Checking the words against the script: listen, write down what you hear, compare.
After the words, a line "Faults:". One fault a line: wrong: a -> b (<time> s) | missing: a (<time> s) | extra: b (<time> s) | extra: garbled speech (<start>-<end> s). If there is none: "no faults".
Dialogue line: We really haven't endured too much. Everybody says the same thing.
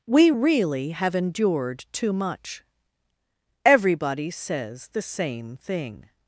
We really have endured too much. Everybody says the same thing.
Faults:
wrong: haven't -> have (0.9 s)